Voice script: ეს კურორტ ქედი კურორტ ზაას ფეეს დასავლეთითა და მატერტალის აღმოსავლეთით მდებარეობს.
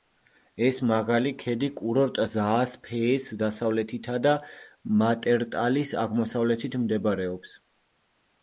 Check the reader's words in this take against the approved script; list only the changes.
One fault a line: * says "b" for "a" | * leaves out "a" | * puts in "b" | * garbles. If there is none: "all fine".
* says "მაღალი" for "კურორტ"